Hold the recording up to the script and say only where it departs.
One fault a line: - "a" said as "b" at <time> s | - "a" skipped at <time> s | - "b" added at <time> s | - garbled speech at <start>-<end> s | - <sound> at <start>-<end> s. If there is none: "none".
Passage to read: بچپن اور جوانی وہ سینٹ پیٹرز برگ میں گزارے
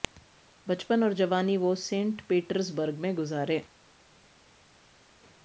none